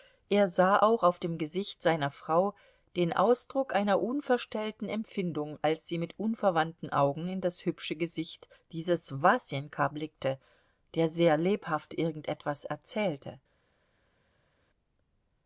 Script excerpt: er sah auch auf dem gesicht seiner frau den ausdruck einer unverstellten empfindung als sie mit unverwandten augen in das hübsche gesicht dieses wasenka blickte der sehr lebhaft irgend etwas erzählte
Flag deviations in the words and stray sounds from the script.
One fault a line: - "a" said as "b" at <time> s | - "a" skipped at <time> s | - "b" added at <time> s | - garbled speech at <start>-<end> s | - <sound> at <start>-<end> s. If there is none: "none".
none